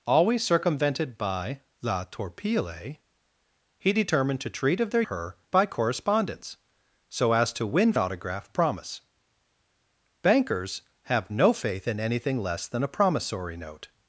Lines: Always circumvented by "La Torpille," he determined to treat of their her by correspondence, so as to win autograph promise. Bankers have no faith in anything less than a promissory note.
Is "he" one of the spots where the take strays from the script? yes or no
no